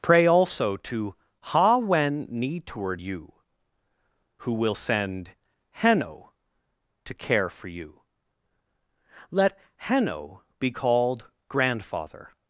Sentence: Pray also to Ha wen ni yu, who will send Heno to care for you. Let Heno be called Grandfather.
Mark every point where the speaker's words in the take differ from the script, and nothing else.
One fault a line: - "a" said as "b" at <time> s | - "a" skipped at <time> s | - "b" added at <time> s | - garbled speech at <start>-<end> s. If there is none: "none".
- "yu" said as "toward you" at 2.6 s